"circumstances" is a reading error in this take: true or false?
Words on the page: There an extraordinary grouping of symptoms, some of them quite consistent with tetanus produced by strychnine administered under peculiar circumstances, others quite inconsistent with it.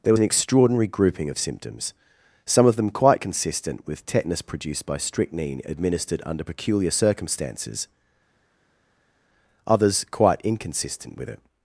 false